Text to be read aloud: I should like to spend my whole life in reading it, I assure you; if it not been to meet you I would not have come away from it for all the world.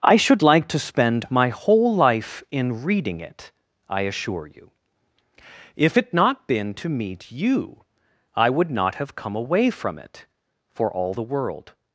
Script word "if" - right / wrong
right